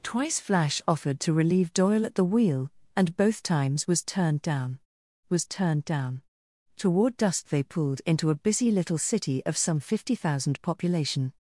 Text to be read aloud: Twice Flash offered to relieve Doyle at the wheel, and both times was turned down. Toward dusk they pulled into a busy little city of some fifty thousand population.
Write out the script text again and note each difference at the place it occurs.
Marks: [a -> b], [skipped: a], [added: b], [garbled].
Twice Flash offered to relieve Doyle at the wheel, and both times was turned down. [added: was turned down] Toward dusk they pulled into a busy little city of some fifty thousand population.